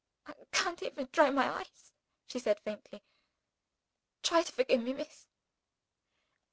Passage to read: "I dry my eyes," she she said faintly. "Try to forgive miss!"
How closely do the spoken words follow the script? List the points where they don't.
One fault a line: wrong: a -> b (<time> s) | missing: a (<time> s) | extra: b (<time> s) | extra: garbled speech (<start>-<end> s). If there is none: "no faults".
extra: can't even (0.5 s)
missing: she (2.4 s)
extra: me (4.8 s)